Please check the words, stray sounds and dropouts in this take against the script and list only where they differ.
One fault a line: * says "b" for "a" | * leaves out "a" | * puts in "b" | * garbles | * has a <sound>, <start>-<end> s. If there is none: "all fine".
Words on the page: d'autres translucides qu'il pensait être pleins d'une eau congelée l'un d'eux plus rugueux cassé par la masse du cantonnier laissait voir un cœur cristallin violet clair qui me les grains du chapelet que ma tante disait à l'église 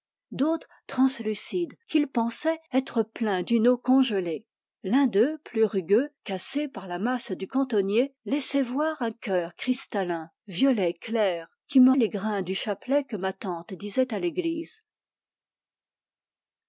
all fine